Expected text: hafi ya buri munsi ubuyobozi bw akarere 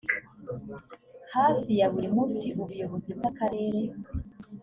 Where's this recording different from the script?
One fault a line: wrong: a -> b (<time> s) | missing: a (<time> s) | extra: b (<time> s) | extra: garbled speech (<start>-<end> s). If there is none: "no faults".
no faults